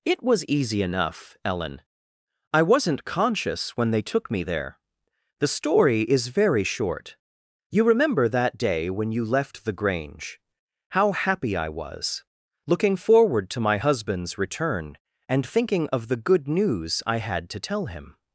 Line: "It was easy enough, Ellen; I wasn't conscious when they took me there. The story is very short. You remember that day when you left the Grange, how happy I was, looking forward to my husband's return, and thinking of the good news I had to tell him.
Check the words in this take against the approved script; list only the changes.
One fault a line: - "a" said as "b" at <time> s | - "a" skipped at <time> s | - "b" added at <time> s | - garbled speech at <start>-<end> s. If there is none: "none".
none